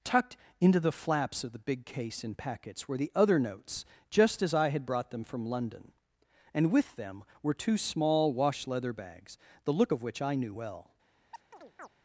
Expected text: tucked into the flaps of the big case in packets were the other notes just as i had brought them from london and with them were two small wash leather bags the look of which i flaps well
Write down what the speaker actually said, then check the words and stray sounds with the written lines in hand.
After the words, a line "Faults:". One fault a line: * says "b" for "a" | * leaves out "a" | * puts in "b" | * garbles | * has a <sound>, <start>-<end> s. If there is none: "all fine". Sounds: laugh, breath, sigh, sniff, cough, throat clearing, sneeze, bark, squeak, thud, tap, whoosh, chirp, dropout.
tucked into the flaps of the big case in packets were the other notes just as i had brought them from london and with them were two small wash leather bags the look of which i knew well
Faults:
* says "knew" for "flaps"
* has a chirp, 11.3-11.9 s